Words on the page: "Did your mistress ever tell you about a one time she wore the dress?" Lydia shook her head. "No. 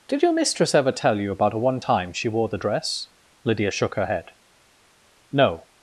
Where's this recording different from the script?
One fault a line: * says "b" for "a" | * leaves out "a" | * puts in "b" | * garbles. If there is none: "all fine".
all fine